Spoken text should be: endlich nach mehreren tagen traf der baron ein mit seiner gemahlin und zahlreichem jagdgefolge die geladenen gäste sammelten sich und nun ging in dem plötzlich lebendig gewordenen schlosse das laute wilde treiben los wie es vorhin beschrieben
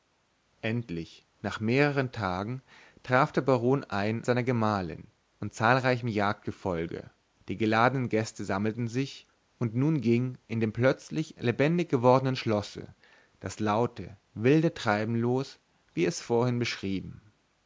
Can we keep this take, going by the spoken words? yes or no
no